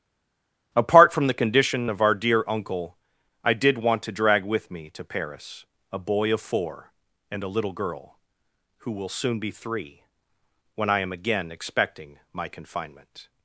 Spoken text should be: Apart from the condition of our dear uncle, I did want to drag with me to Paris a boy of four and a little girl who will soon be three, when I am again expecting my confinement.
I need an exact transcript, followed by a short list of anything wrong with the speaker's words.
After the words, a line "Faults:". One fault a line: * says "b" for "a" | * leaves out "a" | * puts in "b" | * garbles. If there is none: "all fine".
Apart from the condition of our dear uncle, I did want to drag with me to Paris a boy of four and a little girl who will soon be three, when I am again expecting my confinement.
Faults:
all fine